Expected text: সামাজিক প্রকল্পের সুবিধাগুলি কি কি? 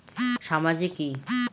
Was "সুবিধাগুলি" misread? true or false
true